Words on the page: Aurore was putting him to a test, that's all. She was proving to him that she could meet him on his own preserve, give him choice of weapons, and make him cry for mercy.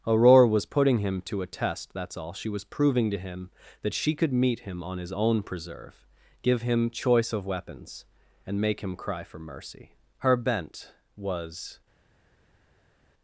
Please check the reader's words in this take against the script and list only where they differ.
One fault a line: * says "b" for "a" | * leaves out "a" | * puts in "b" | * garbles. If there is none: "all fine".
* puts in "Her bent was"